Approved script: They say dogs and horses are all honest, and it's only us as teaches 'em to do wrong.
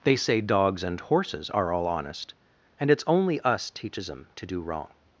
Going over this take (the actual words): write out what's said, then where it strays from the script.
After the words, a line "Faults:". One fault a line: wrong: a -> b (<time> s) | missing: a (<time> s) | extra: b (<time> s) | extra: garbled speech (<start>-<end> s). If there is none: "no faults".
They say dogs and horses are all honest, and it's only us teaches 'em to do wrong.
Faults:
missing: as (3.7 s)